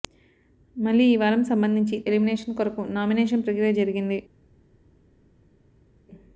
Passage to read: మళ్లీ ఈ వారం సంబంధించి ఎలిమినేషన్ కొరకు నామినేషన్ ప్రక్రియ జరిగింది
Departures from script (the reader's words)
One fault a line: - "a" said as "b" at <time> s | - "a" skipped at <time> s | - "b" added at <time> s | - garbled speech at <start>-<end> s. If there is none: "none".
none